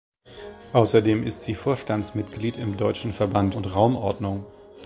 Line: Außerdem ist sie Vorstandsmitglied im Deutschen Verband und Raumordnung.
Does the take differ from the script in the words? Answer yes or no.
no